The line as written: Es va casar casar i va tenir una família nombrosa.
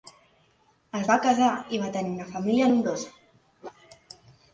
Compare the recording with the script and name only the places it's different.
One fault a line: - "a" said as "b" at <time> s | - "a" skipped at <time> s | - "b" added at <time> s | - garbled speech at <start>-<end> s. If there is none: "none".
- "casar" skipped at 1.5 s